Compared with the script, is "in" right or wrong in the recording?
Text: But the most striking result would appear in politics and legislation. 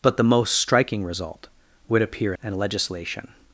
wrong